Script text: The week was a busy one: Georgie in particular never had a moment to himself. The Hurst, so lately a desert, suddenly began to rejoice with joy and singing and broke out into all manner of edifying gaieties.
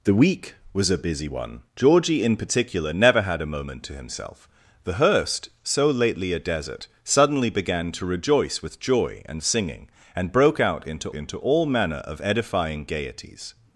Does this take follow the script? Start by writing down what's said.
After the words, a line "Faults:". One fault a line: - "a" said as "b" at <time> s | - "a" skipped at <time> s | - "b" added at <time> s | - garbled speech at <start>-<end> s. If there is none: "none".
The week was a busy one: Georgie in particular never had a moment to himself. The Hurst, so lately a desert, suddenly began to rejoice with joy and singing and broke out into into all manner of edifying gaieties.
Faults:
- "into" added at 11.1 s